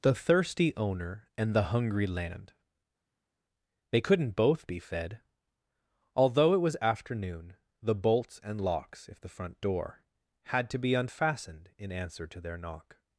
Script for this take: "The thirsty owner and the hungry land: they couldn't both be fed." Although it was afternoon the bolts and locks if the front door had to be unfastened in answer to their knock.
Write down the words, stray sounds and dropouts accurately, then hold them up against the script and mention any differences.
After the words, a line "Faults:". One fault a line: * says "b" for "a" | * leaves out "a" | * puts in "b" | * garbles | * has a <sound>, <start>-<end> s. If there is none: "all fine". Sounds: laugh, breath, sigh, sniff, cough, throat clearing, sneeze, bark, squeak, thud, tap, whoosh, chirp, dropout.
"The thirsty owner and the hungry land: they couldn't both be fed." Although it was afternoon the bolts and locks if the front door had to be unfastened in answer to their knock.
Faults:
all fine